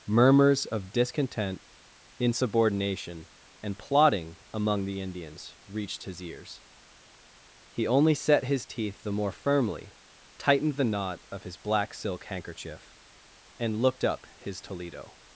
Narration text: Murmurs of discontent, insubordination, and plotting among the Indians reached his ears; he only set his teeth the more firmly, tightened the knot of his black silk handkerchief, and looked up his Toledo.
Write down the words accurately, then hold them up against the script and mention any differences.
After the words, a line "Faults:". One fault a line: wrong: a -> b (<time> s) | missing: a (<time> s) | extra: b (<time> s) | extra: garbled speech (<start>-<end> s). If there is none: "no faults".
Murmurs of discontent, insubordination, and plotting among the Indians reached his ears; he only set his teeth the more firmly, tightened the knot of his black silk handkerchief, and looked up his Toledo.
Faults:
no faults